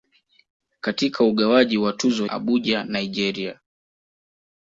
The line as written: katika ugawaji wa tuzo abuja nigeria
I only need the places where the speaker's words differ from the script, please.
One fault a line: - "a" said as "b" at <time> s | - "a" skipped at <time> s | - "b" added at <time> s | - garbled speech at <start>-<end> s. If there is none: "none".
none